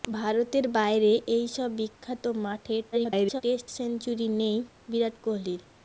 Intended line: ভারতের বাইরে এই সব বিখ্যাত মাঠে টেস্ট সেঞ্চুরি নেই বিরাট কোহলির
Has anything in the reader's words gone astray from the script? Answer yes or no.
yes